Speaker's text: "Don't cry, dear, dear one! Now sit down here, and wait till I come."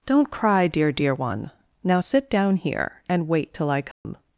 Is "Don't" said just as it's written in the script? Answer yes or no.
yes